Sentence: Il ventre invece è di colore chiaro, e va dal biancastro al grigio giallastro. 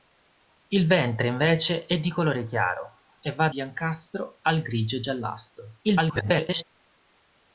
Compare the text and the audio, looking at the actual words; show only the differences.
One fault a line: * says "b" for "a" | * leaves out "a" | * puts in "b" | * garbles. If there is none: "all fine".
* leaves out "dal"
* garbles